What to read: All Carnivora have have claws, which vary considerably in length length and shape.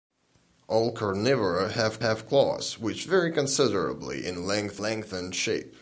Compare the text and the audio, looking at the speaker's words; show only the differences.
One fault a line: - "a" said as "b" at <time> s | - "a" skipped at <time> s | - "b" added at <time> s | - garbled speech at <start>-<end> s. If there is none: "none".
none